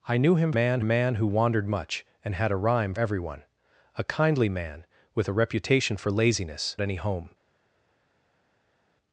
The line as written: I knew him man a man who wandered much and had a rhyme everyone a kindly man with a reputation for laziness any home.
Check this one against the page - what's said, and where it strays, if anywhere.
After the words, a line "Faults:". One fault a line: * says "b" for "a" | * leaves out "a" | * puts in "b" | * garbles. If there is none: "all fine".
I knew him man a man who wandered much and had a rhyme everyone a kindly man with a reputation for laziness any home.
Faults:
all fine